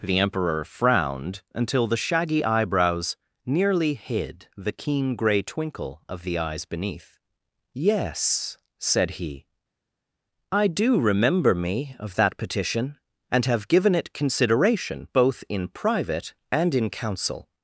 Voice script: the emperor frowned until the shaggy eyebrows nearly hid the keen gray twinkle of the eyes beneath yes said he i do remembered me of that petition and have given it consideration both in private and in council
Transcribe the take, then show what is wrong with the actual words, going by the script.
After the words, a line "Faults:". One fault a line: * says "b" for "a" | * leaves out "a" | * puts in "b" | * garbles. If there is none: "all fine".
the emperor frowned until the shaggy eyebrows nearly hid the keen gray twinkle of the eyes beneath yes said he i do remember me of that petition and have given it consideration both in private and in council
Faults:
* says "remember" for "remembered"